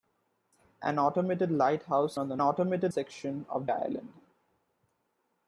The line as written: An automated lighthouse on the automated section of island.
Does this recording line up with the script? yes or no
yes